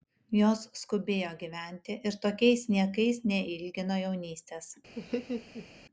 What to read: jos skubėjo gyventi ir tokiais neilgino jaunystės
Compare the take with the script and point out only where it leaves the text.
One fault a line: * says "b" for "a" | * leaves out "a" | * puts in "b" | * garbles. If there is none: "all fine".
* puts in "niekais"